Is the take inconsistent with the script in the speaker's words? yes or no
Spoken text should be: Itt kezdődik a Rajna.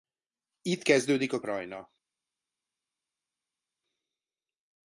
no